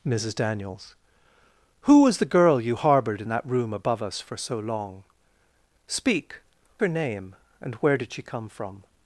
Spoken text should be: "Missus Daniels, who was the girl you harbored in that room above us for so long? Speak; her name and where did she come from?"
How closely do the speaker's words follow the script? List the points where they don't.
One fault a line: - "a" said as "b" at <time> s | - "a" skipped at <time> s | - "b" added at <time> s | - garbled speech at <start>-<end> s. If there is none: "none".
none